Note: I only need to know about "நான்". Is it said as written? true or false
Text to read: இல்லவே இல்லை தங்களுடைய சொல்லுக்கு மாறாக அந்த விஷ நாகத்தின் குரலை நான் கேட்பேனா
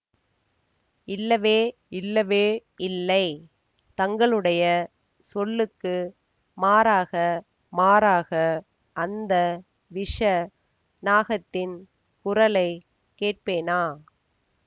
false